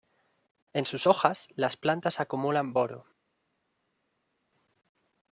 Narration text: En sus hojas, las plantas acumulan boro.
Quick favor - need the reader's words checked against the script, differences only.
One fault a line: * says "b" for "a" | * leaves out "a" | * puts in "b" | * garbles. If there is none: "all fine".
all fine